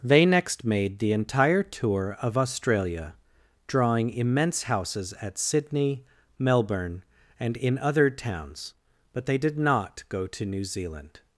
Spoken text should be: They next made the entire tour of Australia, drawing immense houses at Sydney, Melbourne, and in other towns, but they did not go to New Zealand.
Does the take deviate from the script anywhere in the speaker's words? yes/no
no